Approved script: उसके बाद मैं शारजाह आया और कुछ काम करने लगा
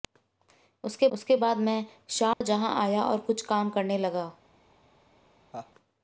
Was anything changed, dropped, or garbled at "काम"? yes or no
no